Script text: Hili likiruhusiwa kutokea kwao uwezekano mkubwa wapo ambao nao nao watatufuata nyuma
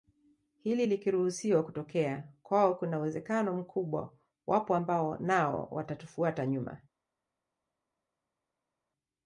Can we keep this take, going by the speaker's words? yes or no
no